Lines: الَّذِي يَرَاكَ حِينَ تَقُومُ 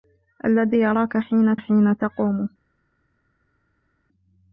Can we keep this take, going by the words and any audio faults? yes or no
no